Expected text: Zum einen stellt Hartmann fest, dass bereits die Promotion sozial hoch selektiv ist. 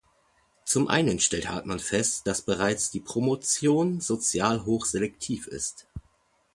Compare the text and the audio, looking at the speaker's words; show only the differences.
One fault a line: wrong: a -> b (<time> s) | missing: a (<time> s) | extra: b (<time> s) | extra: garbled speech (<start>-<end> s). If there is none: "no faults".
no faults